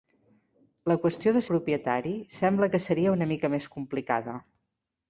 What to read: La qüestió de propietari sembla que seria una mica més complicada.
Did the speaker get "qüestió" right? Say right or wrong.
right